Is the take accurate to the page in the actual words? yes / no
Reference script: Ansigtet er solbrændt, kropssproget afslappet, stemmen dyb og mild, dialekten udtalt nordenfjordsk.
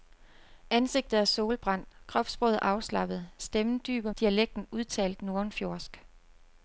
no